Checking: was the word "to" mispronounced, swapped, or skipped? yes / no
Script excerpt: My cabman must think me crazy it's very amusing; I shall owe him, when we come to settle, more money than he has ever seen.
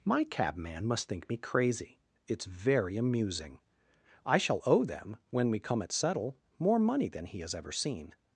yes